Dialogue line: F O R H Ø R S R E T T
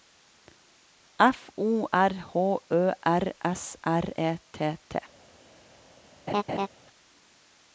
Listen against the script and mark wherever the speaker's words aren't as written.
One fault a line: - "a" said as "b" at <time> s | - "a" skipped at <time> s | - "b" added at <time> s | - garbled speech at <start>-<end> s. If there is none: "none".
none